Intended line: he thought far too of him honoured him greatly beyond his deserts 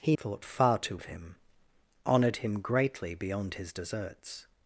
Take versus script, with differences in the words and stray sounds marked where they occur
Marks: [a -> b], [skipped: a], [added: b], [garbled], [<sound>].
he thought far too of him honoured him greatly beyond his deserts